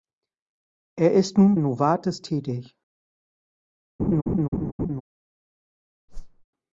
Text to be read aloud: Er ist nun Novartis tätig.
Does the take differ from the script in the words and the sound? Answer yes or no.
yes